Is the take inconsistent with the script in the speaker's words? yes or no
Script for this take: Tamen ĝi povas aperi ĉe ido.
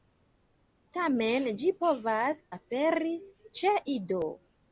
no